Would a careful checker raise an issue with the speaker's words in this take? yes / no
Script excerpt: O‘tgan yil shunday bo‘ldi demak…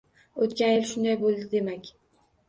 no